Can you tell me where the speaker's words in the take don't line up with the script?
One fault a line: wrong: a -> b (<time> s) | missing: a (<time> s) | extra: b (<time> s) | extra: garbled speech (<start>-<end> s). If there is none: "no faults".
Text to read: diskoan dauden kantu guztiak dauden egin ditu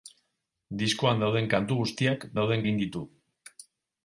no faults